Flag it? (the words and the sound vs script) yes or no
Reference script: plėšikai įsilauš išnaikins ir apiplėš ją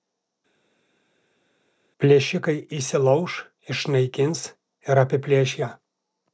no